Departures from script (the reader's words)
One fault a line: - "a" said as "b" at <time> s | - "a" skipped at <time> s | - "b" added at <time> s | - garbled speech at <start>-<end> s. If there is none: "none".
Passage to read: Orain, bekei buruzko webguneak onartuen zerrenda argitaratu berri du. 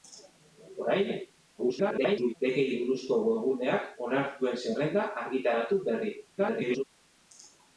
- garbled speech at 1.6-2.3 s
- garbled speech at 6.4-6.8 s